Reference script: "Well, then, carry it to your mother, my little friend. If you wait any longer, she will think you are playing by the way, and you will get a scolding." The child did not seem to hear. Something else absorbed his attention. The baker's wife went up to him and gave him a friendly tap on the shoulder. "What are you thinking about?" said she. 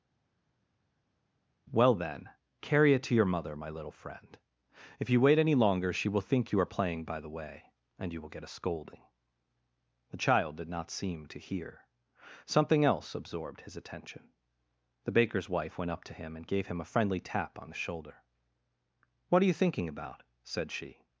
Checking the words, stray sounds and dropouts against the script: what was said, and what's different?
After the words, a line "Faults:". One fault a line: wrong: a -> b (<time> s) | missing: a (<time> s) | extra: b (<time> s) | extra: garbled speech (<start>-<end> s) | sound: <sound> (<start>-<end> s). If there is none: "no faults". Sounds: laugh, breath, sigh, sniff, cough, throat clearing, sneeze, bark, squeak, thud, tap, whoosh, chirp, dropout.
"Well, then, carry it to your mother, my little friend. If you wait any longer, she will think you are playing by the way, and you will get a scolding." The child did not seem to hear. Something else absorbed his attention. The baker's wife went up to him and gave him a friendly tap on the shoulder. "What are you thinking about?" said she.
Faults:
no faults